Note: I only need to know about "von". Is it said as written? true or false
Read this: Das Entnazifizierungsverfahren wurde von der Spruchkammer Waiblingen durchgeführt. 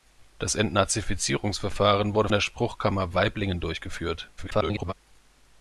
false